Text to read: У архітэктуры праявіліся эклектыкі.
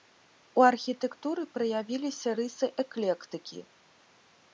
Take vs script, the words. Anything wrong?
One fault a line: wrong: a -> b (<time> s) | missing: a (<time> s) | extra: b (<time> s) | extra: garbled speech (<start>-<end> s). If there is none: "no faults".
extra: рысы (2.4 s)